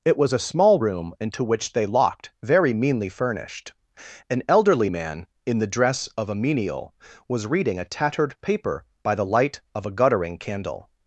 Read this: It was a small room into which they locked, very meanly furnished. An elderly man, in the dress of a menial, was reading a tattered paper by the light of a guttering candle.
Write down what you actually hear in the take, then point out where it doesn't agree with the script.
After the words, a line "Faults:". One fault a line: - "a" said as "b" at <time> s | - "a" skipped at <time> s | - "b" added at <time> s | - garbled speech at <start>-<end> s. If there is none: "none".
It was a small room into which they locked, very meanly furnished. An elderly man, in the dress of a menial, was reading a tattered paper by the light of a guttering candle.
Faults:
none